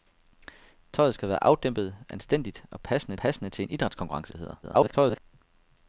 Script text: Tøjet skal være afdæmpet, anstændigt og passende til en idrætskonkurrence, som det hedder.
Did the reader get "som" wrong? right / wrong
wrong